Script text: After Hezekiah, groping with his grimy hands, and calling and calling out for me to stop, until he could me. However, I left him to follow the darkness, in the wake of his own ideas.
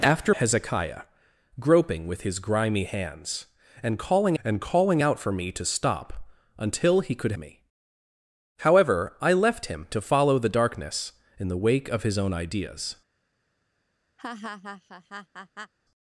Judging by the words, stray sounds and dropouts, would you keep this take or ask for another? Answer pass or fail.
fail